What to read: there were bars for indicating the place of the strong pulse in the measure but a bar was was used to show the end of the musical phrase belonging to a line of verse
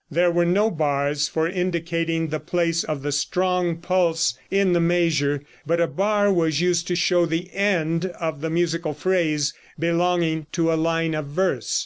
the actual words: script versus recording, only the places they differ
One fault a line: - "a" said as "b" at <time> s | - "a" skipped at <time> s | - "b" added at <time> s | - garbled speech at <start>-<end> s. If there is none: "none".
- "no" added at 0.5 s
- "was" skipped at 6.6 s